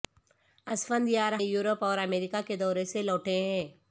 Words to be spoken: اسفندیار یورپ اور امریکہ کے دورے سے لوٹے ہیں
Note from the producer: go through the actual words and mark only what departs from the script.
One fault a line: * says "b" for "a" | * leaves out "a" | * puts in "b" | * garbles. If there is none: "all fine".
all fine